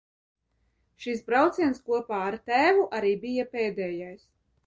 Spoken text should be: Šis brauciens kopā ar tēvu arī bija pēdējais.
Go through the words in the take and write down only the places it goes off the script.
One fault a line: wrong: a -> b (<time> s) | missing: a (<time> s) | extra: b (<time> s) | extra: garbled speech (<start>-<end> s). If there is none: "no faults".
no faults